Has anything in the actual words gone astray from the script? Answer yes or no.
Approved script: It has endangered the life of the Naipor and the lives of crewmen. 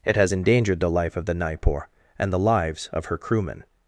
yes